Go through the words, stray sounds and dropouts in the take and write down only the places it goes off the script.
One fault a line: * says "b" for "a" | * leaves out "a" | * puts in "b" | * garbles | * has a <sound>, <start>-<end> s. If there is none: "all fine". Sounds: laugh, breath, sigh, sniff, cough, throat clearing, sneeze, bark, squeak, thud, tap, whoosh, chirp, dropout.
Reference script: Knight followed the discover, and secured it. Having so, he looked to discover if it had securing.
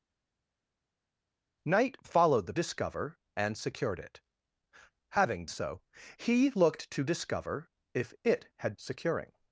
all fine